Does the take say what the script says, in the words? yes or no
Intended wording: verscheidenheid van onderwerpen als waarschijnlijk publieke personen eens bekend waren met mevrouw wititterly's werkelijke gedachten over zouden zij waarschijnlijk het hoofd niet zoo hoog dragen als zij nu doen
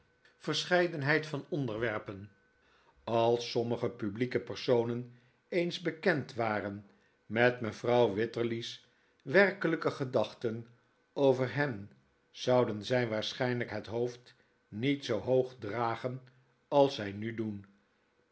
no